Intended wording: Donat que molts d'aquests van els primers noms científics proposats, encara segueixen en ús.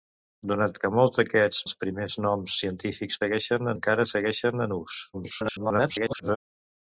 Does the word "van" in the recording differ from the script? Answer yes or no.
yes